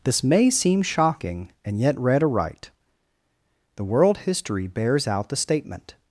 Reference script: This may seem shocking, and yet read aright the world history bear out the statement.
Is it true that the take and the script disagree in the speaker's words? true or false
true